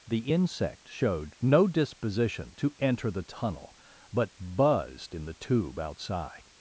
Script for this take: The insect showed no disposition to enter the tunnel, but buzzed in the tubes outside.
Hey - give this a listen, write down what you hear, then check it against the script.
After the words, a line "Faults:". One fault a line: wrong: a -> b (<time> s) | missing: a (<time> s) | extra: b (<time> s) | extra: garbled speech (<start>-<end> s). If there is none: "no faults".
The insect showed no disposition to enter the tunnel, but buzzed in the tube outside.
Faults:
wrong: tubes -> tube (5.3 s)